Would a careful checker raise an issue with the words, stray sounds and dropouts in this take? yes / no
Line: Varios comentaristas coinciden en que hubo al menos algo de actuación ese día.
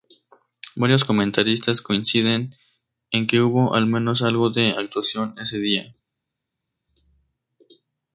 no